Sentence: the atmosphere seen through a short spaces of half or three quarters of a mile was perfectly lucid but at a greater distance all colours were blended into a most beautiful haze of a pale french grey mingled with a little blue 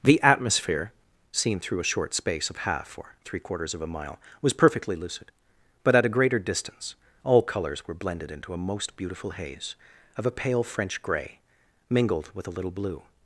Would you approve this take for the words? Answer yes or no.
no